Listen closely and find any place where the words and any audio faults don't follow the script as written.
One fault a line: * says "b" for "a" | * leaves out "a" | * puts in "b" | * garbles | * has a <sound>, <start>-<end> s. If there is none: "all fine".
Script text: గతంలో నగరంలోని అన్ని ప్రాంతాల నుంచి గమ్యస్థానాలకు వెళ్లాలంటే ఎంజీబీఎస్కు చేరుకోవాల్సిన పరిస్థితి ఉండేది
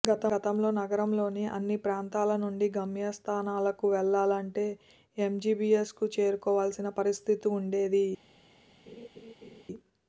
* has a laugh, 8.9-9.6 s